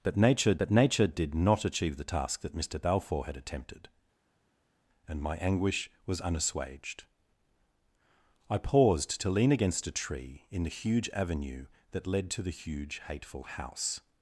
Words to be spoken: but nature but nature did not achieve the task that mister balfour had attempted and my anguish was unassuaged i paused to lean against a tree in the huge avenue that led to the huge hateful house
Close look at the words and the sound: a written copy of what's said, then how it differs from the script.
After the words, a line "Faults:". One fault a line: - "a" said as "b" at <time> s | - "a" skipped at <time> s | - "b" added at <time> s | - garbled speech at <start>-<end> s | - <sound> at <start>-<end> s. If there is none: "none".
but nature but nature did not achieve the task that mister balfour had attempted and my anguish was unassuaged i paused to lean against a tree in the huge avenue that led to the huge hateful house
Faults:
none